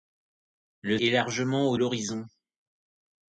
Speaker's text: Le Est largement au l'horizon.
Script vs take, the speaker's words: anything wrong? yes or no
no